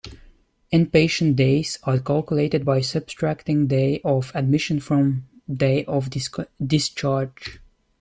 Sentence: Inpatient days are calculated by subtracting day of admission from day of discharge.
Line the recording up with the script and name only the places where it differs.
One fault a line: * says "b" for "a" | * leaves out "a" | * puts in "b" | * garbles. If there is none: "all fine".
all fine